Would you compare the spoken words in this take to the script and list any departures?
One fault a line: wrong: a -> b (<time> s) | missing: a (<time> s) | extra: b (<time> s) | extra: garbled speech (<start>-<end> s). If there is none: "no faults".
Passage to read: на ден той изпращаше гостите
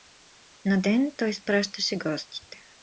no faults